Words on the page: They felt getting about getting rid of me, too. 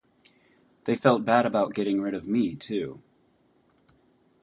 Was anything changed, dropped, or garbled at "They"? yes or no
no